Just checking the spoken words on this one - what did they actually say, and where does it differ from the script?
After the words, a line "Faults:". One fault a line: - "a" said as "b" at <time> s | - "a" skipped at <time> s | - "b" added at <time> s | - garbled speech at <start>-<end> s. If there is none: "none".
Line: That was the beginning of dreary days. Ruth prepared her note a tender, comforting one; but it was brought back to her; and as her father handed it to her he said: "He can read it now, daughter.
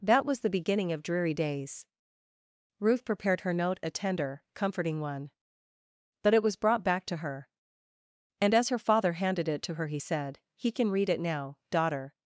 That was the beginning of dreary days. Ruth prepared her note a tender, comforting one; but it was brought back to her; and as her father handed it to her he said: "He can read it now, daughter.
Faults:
none